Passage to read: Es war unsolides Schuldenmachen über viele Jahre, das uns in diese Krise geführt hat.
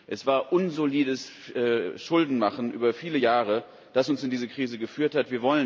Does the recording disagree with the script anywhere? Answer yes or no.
no